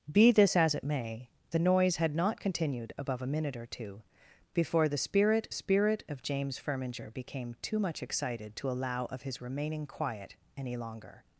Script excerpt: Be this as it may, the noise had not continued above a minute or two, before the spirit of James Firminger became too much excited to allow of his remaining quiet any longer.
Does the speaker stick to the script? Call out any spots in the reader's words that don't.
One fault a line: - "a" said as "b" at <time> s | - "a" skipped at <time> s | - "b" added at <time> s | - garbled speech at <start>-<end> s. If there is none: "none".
- "spirit" added at 5.5 s